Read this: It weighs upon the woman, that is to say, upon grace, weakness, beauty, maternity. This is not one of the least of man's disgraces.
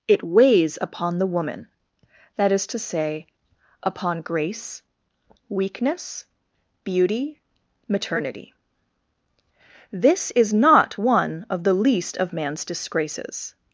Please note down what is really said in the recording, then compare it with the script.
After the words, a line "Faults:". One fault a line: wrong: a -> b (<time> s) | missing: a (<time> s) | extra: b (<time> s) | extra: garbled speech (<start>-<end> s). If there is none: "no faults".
It weighs upon the woman, that is to say, upon grace, weakness, beauty, maternity. This is not one of the least of man's disgraces.
Faults:
no faults